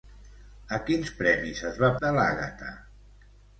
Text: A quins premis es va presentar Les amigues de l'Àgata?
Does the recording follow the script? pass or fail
fail